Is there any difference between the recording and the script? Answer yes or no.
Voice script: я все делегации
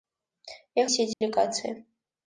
no